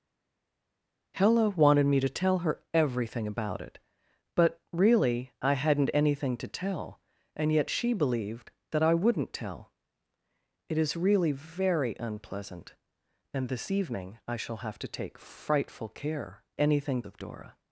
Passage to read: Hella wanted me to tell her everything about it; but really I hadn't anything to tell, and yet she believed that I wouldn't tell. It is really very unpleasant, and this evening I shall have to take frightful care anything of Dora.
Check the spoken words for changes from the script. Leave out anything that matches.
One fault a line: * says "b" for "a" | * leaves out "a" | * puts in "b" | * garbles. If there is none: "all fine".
all fine